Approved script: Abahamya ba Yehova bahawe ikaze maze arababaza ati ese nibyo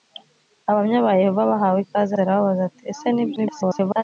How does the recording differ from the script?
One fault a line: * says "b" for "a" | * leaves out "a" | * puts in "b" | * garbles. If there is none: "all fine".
* leaves out "maze"
* garbles